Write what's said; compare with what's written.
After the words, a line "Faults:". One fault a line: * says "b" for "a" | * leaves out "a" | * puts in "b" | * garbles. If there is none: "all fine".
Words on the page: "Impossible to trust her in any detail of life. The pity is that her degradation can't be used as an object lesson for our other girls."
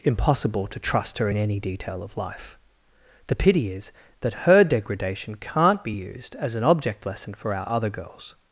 "Impossible to trust her in any detail of life. The pity is that her degradation can't be used as an object lesson for our other girls."
Faults:
all fine